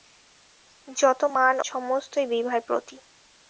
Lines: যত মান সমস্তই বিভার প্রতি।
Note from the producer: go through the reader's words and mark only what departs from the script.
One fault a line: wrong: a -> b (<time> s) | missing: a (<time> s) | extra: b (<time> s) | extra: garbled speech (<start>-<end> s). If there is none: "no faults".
no faults